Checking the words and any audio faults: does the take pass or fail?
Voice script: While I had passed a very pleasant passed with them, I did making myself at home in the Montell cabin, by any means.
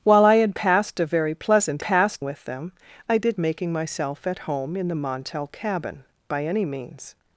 pass